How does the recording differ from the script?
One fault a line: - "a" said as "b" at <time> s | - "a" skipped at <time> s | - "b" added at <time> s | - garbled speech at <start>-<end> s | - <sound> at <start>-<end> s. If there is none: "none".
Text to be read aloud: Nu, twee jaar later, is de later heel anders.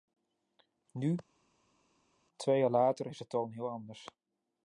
- "later" said as "toon" at 3.3 s